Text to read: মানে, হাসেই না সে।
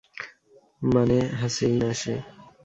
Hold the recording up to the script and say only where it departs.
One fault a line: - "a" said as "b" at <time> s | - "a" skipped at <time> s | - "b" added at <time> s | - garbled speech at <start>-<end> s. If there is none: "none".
none